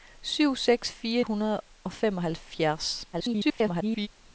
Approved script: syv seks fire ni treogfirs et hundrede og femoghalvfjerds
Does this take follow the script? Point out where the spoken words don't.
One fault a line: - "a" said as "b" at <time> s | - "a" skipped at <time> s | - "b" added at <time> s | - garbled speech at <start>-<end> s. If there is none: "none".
- "ni treogfirs et" skipped at 1.2 s
- garbled speech at 3.1-4.1 s